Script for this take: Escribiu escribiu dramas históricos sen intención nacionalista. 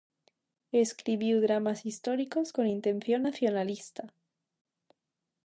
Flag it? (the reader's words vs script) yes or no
yes